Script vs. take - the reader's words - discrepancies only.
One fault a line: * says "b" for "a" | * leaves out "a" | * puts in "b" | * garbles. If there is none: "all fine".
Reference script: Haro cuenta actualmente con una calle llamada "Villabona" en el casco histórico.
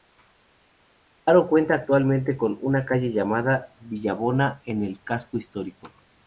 all fine